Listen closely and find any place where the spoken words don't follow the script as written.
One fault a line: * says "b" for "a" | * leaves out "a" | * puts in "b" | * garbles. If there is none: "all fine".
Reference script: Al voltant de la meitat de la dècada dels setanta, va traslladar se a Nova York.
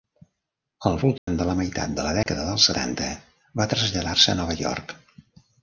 all fine